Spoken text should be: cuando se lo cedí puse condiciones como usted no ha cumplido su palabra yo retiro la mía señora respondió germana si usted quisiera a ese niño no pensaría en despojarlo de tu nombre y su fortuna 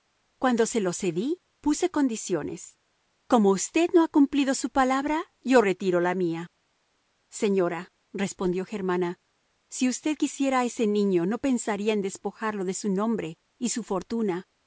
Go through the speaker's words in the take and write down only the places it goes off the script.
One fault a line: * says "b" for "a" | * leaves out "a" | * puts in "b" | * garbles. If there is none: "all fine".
* says "su" for "tu"